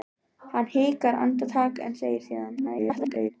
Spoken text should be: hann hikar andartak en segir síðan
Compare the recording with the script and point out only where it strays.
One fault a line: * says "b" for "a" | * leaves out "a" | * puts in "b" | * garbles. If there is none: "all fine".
* garbles